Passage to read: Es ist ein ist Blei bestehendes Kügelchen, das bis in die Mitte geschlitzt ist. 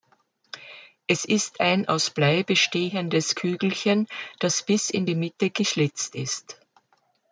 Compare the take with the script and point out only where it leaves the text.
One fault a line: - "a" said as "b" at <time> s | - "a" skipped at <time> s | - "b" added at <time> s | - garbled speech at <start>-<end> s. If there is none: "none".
- "ist" said as "aus" at 1.9 s